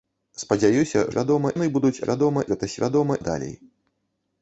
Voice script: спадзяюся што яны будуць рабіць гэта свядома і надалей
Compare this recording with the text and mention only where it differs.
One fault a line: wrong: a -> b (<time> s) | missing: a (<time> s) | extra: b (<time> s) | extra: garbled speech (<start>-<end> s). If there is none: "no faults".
wrong: што -> свядома (1.1 s)
wrong: рабіць -> свядома (2.0 s)
missing: і (3.1 s)